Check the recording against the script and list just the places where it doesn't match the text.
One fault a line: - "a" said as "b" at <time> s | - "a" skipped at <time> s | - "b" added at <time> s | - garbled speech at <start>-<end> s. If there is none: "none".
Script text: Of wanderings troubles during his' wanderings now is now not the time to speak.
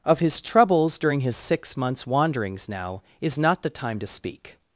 - "wanderings" said as "his" at 0.2 s
- "six months" added at 1.4 s
- "now" skipped at 3.4 s